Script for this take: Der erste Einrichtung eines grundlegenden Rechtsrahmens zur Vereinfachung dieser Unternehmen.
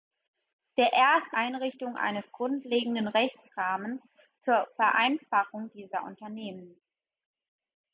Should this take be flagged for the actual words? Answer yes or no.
no